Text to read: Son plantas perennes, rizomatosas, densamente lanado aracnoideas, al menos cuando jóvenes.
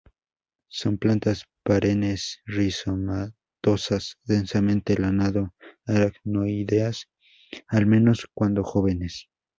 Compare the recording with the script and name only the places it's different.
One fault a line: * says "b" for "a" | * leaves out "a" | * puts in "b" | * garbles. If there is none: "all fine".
all fine